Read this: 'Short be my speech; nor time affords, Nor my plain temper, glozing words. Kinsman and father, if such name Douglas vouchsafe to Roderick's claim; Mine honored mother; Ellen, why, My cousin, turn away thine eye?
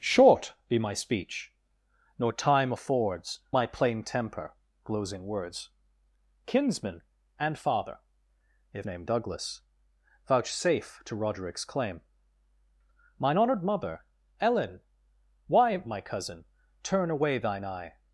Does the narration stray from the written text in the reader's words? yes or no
yes